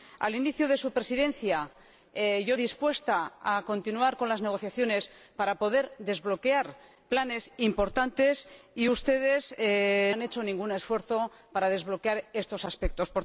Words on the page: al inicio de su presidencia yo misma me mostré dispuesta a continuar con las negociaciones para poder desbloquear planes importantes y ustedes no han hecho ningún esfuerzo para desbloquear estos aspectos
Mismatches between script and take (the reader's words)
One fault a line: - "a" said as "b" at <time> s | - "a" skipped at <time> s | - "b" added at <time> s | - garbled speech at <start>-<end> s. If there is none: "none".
- "misma me mostré" skipped at 2.6 s
- "no" skipped at 9.5 s